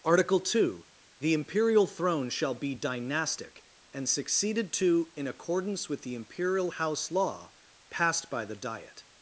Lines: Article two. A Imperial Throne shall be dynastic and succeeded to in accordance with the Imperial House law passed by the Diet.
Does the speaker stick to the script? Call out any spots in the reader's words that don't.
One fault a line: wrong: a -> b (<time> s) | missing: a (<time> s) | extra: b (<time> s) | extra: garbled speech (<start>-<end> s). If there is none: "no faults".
wrong: A -> The (1.2 s)